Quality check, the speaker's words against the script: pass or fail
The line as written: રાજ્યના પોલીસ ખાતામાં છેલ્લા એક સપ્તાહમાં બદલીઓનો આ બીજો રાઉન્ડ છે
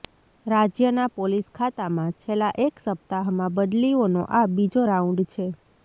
pass